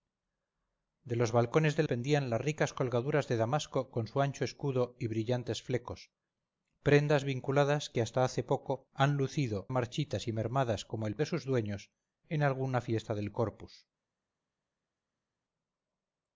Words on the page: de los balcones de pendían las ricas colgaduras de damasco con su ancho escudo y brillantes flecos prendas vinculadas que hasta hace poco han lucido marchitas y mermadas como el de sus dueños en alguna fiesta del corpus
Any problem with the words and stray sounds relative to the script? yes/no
no